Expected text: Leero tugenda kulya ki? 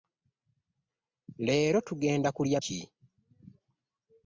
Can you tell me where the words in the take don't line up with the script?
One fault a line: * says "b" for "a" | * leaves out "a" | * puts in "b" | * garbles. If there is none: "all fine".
all fine